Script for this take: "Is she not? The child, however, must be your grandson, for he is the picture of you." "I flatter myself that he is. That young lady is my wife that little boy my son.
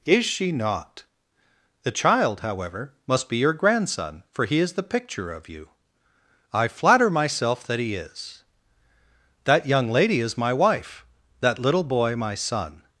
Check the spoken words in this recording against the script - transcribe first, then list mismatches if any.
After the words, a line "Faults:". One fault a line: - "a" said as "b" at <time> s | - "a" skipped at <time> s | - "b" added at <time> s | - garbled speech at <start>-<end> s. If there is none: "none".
"Is she not? The child, however, must be your grandson, for he is the picture of you." "I flatter myself that he is. That young lady is my wife that little boy my son.
Faults:
none